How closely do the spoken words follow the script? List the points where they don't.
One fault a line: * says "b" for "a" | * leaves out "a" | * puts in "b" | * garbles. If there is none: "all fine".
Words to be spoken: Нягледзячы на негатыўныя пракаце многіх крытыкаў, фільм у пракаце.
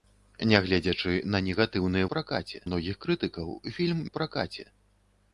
all fine